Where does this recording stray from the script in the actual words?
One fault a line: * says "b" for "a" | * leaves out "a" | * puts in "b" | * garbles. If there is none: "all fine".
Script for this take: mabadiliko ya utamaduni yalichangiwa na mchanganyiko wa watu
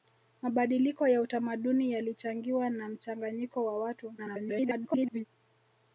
* garbles